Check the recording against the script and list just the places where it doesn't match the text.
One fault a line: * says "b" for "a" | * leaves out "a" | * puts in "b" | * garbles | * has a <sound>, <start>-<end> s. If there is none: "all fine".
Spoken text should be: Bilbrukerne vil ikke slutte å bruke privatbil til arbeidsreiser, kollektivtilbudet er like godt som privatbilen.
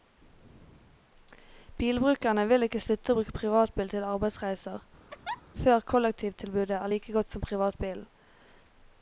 * has a laugh, 5.1-5.4 s
* puts in "før"